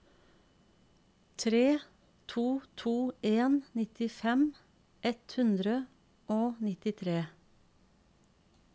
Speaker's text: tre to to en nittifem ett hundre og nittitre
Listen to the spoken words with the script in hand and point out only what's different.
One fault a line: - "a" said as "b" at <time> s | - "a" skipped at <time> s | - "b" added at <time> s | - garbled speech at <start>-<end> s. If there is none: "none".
none